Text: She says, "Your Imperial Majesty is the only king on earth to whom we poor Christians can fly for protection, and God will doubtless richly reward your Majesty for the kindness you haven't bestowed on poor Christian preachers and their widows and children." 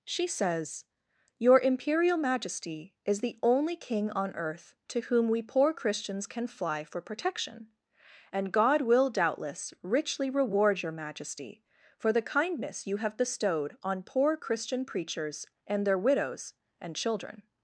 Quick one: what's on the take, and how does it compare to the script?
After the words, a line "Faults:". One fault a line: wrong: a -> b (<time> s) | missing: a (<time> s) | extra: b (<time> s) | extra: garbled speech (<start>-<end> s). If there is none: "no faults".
She says, "Your Imperial Majesty is the only king on earth to whom we poor Christians can fly for protection, and God will doubtless richly reward your Majesty for the kindness you have bestowed on poor Christian preachers and their widows and children."
Faults:
wrong: haven't -> have (13.0 s)